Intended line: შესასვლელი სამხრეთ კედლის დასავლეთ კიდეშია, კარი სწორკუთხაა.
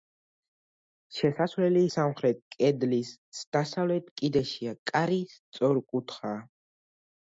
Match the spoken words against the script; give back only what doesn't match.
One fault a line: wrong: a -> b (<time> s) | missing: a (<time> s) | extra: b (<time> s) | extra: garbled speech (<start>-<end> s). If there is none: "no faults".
no faults